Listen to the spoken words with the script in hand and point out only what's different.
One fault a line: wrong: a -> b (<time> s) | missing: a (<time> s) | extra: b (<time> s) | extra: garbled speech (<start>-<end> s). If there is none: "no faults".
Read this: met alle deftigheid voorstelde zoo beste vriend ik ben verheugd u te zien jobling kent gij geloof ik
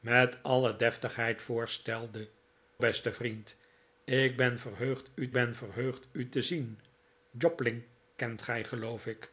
missing: zoo (2.3 s)
extra: ben verheugd u (5.3 s)